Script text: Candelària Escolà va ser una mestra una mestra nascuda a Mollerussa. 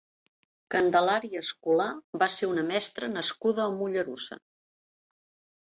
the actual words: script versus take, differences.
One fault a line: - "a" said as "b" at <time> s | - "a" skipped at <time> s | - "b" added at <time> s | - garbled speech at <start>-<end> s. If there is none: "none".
- "una mestra" skipped at 3.1 s